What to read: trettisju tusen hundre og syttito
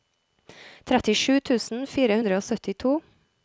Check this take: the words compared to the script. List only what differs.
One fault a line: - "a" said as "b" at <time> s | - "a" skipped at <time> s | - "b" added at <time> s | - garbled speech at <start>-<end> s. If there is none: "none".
- "fire" added at 1.9 s